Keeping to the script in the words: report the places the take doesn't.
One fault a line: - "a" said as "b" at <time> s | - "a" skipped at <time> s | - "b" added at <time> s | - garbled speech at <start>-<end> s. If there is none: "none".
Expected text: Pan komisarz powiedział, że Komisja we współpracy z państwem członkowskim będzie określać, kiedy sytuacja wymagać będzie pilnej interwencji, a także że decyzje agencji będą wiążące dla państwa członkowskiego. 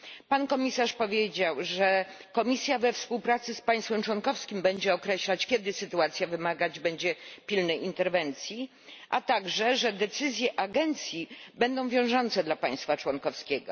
none